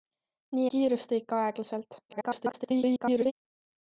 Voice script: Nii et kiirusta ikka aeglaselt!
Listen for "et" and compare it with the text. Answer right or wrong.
wrong